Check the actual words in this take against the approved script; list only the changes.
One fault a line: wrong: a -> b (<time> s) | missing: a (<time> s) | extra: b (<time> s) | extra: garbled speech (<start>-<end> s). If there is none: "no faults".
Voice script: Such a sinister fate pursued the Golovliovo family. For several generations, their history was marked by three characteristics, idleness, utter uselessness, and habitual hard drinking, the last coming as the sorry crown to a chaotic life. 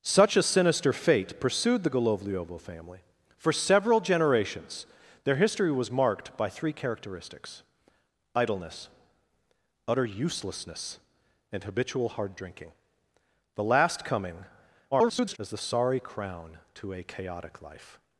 extra: garbled speech (14.9-15.4 s)